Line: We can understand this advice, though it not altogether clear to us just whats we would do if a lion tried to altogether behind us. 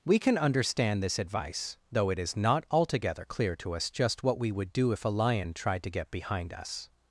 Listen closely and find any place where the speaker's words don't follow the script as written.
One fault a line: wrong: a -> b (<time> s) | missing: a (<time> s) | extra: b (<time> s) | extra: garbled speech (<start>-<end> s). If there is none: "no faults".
extra: is (2.2 s)
wrong: whats -> what (4.2 s)
wrong: altogether -> get (5.9 s)